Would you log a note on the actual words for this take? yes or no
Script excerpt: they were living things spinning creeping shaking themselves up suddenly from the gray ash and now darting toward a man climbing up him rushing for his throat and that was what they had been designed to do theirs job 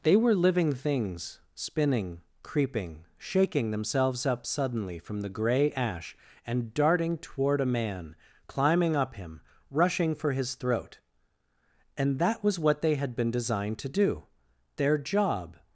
yes